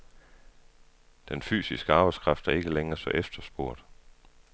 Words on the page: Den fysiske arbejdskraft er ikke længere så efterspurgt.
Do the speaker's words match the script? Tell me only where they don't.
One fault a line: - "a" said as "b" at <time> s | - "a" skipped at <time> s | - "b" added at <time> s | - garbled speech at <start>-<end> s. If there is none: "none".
none